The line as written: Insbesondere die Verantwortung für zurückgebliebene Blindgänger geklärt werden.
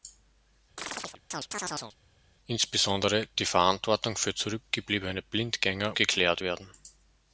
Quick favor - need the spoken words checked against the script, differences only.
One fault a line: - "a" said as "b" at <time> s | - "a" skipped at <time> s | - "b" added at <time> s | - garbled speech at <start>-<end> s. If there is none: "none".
none